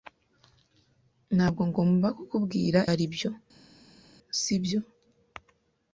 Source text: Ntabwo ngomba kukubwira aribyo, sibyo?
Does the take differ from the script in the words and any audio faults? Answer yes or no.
no